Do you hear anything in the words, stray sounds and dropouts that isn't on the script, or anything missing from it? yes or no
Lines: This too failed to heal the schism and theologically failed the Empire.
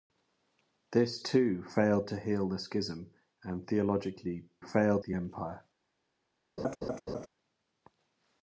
yes